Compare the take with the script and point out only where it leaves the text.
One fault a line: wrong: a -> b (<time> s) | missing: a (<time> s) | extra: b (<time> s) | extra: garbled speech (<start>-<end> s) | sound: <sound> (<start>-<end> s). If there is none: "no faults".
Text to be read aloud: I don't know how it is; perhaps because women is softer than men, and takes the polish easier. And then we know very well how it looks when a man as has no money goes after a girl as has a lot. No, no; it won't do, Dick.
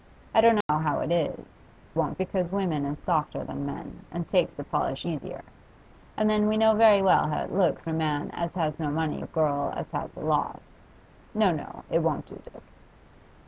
sound: dropout (0.6-0.7 s)
wrong: perhaps -> won't (1.9 s)
missing: when (7.9 s)
missing: goes after (9.2 s)